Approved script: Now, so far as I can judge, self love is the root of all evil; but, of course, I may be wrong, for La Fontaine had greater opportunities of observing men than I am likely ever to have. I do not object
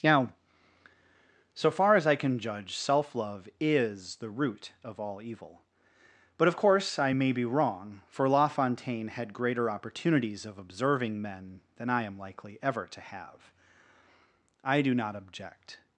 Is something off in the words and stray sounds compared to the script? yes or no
no